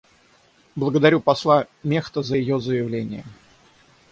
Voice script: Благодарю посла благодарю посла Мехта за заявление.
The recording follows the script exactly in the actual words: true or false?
false